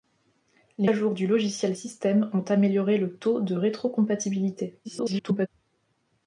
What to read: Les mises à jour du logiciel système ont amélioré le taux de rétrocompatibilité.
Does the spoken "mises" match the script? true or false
false